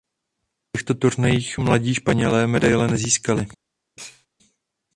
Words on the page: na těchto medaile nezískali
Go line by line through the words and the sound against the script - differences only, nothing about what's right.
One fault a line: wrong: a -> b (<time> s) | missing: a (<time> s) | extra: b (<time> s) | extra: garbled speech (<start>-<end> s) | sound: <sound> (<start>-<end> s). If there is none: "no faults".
extra: turnajích mladí španělé (0.9 s)
sound: sneeze (4.0-4.3 s)